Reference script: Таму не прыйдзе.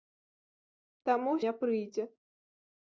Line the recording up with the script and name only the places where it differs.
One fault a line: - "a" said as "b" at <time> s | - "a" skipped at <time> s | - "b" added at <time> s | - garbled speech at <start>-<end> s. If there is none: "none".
none